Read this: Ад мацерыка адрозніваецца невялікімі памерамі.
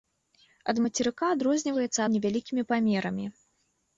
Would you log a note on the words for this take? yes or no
no